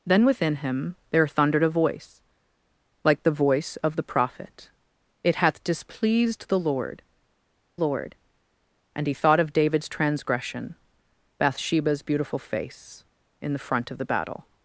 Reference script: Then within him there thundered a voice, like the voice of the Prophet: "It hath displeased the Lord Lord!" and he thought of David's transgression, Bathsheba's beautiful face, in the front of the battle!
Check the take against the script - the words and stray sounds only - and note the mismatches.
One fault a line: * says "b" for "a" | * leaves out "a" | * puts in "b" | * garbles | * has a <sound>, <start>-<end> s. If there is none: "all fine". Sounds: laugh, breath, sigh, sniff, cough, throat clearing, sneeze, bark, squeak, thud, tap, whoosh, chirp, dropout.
all fine